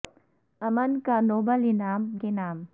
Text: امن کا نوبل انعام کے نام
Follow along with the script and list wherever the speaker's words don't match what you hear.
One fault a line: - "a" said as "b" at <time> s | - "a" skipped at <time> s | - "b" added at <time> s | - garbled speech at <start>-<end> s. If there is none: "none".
none